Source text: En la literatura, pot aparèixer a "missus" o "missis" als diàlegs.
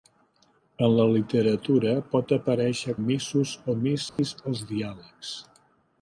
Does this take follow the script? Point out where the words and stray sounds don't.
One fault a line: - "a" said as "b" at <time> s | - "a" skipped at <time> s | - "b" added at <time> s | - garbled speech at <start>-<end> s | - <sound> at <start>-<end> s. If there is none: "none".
- dropout at 4.1-4.2 s